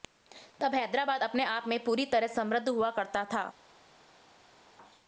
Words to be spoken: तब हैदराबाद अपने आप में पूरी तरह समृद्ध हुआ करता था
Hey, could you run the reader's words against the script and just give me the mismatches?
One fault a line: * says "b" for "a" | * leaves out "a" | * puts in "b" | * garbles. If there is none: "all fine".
all fine